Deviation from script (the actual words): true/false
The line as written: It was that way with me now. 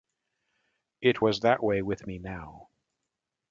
false